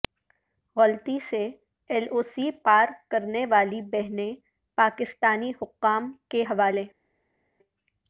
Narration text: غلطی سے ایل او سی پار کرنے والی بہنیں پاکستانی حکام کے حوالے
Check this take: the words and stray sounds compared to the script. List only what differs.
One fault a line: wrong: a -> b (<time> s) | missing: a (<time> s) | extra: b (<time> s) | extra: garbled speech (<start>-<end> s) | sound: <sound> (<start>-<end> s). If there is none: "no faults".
no faults